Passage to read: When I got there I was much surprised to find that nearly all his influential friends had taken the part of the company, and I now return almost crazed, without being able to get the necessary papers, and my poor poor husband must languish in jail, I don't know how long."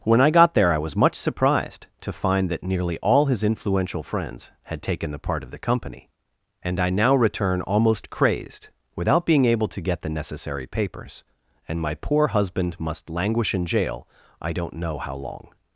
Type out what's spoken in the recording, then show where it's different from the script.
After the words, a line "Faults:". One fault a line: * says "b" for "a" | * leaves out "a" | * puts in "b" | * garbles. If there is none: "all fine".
When I got there I was much surprised to find that nearly all his influential friends had taken the part of the company, and I now return almost crazed, without being able to get the necessary papers, and my poor husband must languish in jail, I don't know how long."
Faults:
* leaves out "poor"